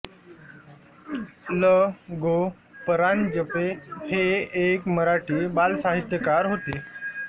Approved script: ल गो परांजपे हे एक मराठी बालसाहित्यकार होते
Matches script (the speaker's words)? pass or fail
pass